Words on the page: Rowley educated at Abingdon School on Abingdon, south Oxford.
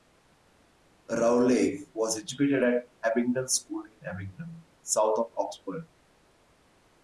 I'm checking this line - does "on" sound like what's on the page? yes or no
no